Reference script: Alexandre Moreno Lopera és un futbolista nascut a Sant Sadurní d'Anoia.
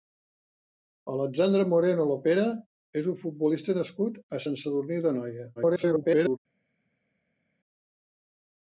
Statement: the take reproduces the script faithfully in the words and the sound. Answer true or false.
false